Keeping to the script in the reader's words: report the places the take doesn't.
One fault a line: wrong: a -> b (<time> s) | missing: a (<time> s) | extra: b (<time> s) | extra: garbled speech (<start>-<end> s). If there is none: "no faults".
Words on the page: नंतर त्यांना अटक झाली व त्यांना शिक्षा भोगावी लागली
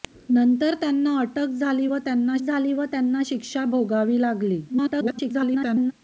extra: झाली व त्यांना (2.4 s)
extra: garbled speech (4.7-5.9 s)